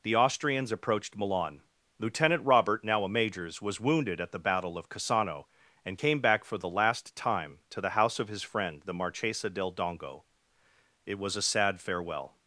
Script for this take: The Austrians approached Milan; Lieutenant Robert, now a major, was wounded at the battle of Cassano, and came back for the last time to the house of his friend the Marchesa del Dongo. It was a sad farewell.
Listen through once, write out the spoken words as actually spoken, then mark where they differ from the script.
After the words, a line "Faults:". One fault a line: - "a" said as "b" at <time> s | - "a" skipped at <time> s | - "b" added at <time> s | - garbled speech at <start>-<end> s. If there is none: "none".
The Austrians approached Milan; Lieutenant Robert, now a majors, was wounded at the battle of Cassano, and came back for the last time to the house of his friend the Marchesa del Dongo. It was a sad farewell.
Faults:
- "major" said as "majors" at 3.1 s